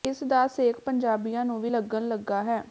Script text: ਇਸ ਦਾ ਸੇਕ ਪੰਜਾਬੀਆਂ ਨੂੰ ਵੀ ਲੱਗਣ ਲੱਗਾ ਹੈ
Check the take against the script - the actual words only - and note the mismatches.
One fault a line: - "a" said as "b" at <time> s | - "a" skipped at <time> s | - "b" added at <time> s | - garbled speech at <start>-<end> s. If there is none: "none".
none